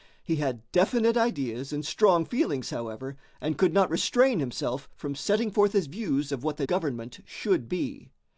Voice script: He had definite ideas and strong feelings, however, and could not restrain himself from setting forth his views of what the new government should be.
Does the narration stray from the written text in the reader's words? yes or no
yes